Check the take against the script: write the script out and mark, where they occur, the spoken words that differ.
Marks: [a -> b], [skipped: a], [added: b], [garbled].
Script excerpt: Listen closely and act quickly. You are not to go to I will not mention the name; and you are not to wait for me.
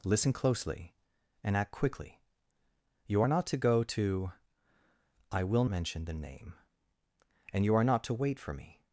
Listen closely and act quickly. You are not to go to I will [skipped: not] mention the name; and you are not to wait for me.